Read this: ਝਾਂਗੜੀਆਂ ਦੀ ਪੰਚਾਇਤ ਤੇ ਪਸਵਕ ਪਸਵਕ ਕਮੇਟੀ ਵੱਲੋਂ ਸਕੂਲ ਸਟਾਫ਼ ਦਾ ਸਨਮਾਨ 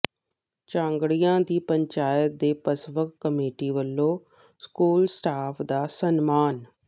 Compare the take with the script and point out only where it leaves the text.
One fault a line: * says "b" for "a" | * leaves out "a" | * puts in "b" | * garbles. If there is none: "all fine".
* leaves out "ਪਸਵਕ"